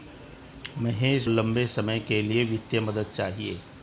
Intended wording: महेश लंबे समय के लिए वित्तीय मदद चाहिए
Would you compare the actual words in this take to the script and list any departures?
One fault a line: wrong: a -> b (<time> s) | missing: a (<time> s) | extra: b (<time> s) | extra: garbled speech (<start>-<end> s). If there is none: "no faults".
no faults